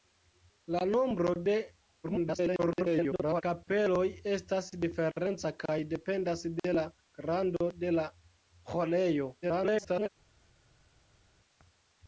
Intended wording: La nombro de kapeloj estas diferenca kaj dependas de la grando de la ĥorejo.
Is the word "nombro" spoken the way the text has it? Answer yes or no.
yes